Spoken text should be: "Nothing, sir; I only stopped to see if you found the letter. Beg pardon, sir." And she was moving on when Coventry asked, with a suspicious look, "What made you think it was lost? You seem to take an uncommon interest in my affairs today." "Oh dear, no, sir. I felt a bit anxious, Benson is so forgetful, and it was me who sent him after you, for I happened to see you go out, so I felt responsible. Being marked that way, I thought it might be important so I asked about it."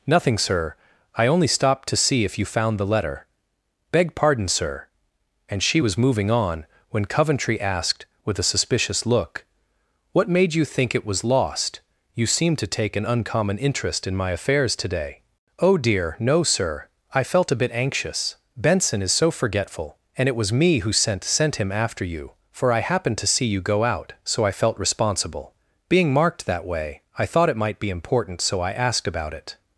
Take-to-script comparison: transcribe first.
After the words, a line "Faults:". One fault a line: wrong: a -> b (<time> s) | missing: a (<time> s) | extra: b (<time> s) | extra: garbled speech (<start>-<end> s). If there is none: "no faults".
"Nothing, sir; I only stopped to see if you found the letter. Beg pardon, sir." And she was moving on when Coventry asked, with a suspicious look, "What made you think it was lost? You seem to take an uncommon interest in my affairs today." "Oh dear, no, sir. I felt a bit anxious, Benson is so forgetful, and it was me who sent sent him after you, for I happened to see you go out, so I felt responsible. Being marked that way, I thought it might be important so I asked about it."
Faults:
extra: sent (21.2 s)